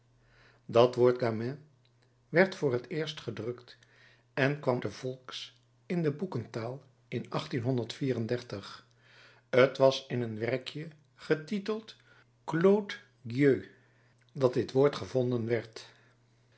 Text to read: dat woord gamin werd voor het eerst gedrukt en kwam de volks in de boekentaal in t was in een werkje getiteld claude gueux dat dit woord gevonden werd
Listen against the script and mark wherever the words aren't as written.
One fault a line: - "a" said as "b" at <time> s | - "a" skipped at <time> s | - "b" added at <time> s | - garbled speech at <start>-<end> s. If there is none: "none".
none